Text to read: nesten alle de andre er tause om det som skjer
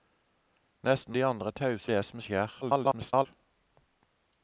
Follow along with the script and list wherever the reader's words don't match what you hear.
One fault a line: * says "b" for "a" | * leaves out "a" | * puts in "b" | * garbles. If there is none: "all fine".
* leaves out "alle"
* leaves out "om"
* garbles